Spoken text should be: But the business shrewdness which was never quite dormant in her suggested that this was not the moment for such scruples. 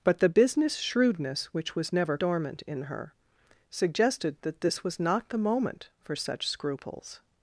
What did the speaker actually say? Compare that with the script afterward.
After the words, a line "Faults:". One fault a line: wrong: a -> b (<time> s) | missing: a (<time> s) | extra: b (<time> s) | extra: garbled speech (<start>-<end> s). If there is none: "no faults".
But the business shrewdness which was never dormant in her suggested that this was not the moment for such scruples.
Faults:
missing: quite (2.2 s)